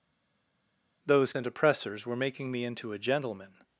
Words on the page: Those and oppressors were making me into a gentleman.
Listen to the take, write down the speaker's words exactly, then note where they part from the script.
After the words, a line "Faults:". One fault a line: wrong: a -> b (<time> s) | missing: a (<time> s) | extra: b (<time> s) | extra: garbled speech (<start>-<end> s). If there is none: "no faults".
Those and oppressors were making me into a gentleman.
Faults:
no faults